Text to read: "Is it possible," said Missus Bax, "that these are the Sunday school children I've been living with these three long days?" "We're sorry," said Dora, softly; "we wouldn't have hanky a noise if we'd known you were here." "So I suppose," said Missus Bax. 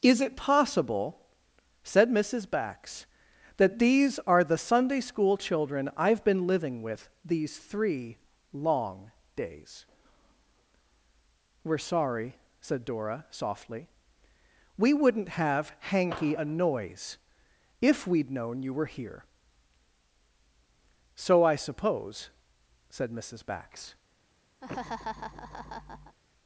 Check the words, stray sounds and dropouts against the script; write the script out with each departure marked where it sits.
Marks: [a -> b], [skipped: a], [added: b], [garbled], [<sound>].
"Is it possible," said Missus Bax, "that these are the Sunday school children I've been living with these three long days?" "We're sorry," said Dora, softly; "we wouldn't have hanky a noise if we'd known you were here." "So I suppose," said Missus Bax. [laugh]